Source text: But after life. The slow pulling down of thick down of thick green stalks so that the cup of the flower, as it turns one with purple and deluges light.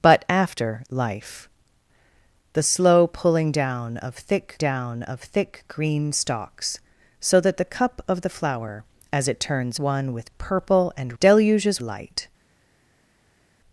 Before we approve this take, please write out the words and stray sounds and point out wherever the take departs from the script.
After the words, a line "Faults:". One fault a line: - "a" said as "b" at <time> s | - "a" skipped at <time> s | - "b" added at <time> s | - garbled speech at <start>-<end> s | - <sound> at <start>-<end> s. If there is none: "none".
But after life. The slow pulling down of thick down of thick green stalks so that the cup of the flower, as it turns one with purple and deluges light.
Faults:
none